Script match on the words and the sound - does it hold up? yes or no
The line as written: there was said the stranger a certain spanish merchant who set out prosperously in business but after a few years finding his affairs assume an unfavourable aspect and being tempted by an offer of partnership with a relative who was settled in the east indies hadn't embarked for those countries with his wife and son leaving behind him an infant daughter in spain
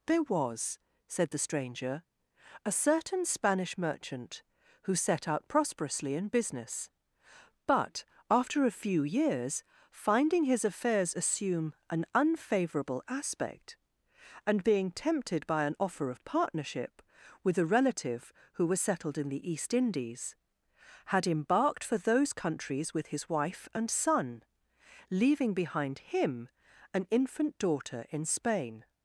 no